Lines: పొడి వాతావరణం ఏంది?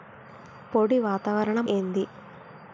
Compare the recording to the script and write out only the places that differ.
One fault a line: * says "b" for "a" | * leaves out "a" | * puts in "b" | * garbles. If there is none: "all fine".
all fine